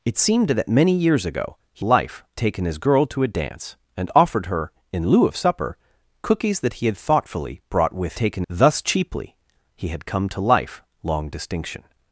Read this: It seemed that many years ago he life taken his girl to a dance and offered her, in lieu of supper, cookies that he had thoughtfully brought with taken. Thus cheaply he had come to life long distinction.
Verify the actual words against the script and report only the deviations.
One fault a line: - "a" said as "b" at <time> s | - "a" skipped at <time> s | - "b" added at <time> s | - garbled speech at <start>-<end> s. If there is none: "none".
none